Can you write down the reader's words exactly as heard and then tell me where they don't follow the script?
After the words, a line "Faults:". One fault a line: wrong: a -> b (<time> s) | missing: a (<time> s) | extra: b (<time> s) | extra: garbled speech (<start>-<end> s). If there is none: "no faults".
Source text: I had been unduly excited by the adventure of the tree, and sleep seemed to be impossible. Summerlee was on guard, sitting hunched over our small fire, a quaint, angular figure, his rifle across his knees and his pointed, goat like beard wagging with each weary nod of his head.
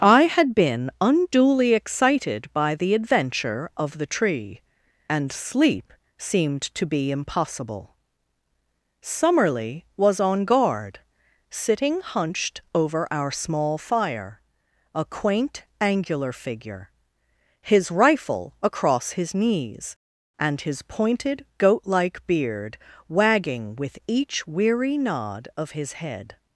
I had been unduly excited by the adventure of the tree, and sleep seemed to be impossible. Summerlee was on guard, sitting hunched over our small fire, a quaint, angular figure, his rifle across his knees and his pointed, goat like beard wagging with each weary nod of his head.
Faults:
no faults